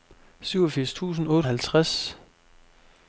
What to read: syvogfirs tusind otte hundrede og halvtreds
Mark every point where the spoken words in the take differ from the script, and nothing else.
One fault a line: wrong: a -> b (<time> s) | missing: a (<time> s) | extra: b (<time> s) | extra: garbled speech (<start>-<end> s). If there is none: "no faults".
missing: hundrede (1.5 s)